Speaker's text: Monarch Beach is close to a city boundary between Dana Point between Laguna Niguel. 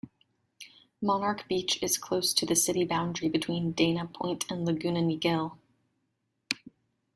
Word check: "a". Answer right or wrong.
wrong